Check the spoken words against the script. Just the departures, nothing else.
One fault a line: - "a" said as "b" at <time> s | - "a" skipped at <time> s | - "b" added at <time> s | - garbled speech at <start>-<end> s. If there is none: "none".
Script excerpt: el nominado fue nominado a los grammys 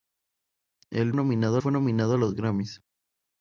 none